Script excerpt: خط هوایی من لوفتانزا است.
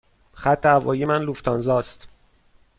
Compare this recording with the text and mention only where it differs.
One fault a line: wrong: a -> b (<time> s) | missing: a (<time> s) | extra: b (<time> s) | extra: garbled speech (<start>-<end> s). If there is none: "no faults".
no faults